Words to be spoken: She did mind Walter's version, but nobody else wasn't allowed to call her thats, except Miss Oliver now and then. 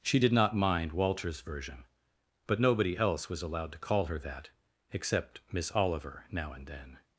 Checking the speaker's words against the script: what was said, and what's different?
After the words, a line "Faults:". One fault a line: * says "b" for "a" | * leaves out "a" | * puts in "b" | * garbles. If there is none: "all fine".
She did not mind Walter's version, but nobody else was allowed to call her that, except Miss Oliver now and then.
Faults:
* puts in "not"
* says "was" for "wasn't"
* says "that" for "thats"